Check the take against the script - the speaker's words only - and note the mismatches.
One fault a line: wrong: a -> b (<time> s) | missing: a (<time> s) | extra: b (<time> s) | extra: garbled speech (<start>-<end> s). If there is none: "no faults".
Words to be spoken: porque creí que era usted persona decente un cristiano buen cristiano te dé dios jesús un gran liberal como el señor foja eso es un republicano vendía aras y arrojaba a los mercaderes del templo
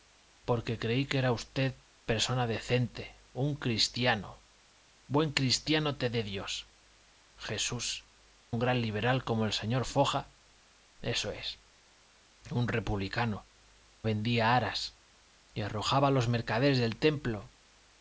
no faults